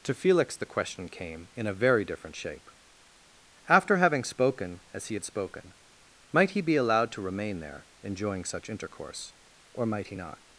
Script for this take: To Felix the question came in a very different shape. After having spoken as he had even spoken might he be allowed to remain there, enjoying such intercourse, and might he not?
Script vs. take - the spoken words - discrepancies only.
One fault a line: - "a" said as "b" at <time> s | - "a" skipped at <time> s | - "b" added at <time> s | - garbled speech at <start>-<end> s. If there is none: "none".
- "even" skipped at 5.2 s
- "and" said as "or" at 9.7 s